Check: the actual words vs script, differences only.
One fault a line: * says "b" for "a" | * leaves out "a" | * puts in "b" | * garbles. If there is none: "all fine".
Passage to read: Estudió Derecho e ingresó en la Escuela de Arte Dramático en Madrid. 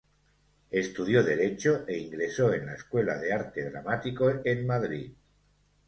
all fine